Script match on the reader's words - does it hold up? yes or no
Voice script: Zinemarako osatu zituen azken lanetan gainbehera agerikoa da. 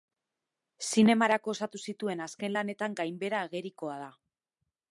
yes